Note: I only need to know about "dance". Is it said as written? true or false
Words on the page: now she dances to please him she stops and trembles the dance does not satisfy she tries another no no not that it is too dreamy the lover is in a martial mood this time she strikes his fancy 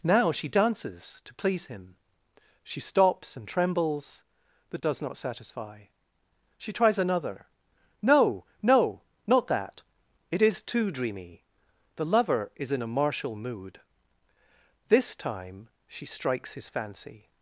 false